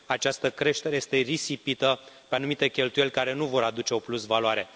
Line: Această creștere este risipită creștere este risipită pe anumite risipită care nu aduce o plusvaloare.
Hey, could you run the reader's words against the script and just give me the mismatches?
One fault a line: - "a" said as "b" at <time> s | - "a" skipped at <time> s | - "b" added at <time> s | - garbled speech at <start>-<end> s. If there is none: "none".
- "creștere este risipită" skipped at 2.0 s
- "risipită" said as "cheltuieli" at 2.7 s
- "vor" added at 3.5 s